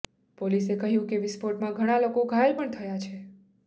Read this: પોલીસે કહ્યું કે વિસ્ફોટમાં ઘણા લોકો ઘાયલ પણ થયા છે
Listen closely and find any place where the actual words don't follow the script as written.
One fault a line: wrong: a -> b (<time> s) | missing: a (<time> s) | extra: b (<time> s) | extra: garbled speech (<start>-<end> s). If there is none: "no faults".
no faults